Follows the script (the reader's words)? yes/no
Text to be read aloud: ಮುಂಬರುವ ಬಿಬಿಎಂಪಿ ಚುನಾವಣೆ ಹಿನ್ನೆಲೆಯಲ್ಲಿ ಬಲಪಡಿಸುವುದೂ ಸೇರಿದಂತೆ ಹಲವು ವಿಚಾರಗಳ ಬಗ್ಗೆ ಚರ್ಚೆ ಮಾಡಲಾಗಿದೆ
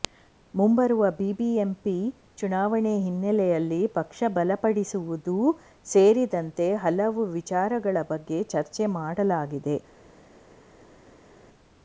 no